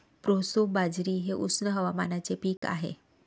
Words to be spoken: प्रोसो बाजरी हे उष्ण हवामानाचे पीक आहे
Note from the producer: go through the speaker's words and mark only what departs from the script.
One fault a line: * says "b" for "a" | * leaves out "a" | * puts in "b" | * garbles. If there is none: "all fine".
all fine